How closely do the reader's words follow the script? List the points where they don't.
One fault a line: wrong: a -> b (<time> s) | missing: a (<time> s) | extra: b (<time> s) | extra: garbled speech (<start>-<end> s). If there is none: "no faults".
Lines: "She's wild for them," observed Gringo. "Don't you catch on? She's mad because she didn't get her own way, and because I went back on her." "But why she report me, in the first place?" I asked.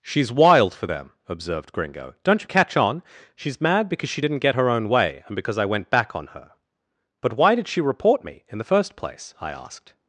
extra: did (7.5 s)